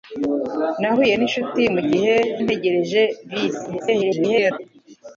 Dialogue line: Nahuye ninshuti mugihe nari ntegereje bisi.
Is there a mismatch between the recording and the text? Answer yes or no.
yes